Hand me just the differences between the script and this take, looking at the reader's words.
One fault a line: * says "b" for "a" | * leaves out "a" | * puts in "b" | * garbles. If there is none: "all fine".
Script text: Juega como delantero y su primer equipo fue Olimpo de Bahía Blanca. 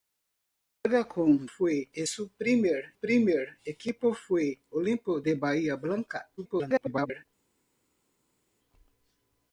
* says "fue" for "delantero"
* puts in "primer"
* garbles